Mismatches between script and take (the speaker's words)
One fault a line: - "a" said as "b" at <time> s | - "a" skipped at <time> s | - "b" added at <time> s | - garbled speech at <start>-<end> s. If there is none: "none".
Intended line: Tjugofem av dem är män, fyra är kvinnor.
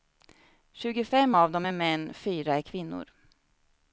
none